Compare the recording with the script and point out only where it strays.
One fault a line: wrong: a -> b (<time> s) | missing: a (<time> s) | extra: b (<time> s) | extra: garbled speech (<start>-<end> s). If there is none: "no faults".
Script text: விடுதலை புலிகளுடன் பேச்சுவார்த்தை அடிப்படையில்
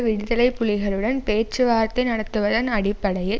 extra: நடத்துவதன் (2.1 s)